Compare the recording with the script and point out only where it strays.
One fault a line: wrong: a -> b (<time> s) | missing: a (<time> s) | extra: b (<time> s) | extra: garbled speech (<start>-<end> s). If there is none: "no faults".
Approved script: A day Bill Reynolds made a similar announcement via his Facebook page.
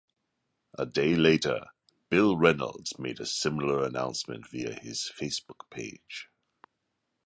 extra: later (1.1 s)